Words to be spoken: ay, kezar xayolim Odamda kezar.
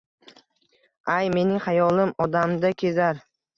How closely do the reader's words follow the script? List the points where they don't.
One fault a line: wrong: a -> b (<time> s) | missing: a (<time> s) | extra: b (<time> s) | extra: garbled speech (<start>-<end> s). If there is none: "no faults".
wrong: kezar -> mening (1.4 s)